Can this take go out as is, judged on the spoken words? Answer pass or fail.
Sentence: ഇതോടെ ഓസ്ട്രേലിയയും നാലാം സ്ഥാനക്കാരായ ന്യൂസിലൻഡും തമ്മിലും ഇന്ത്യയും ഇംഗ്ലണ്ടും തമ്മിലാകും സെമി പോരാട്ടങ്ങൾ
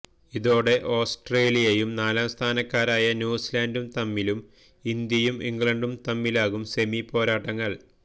pass